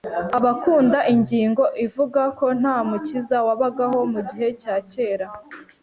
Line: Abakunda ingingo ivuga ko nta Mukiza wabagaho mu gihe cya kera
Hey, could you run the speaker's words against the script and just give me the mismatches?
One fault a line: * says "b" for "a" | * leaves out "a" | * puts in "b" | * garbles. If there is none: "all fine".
all fine